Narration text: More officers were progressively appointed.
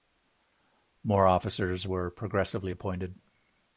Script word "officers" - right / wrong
right